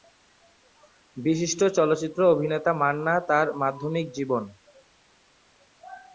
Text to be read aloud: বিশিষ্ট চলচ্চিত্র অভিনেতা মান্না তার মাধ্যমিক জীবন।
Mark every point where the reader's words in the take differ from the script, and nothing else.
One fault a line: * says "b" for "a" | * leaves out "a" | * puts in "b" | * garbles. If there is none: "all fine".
all fine